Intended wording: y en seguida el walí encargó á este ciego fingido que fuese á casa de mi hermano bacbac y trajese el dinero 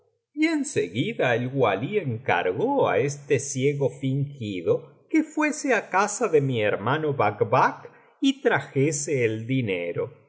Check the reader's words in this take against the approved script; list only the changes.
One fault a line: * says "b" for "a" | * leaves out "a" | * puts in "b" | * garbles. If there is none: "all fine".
all fine